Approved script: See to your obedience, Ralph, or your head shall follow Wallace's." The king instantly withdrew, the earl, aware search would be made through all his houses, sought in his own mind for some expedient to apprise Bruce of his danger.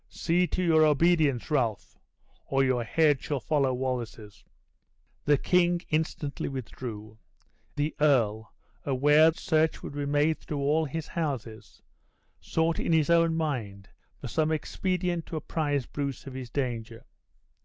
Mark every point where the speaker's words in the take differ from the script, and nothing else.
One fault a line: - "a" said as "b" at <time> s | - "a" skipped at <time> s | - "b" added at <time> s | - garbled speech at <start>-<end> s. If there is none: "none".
none